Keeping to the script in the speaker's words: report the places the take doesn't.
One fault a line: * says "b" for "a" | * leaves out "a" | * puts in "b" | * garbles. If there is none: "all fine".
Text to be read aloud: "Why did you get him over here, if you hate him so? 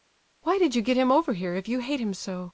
all fine